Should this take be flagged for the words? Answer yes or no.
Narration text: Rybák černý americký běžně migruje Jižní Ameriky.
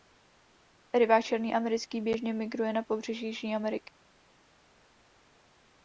yes